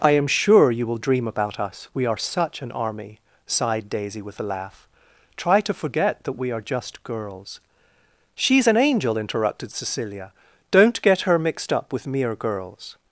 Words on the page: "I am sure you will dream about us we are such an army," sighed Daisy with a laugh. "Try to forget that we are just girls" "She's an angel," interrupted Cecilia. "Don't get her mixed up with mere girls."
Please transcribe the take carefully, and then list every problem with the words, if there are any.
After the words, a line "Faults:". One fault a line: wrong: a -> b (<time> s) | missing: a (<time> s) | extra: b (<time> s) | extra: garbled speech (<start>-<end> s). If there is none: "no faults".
"I am sure you will dream about us we are such an army," sighed Daisy with a laugh. "Try to forget that we are just girls" "She's an angel," interrupted Cecilia. "Don't get her mixed up with mere girls."
Faults:
no faults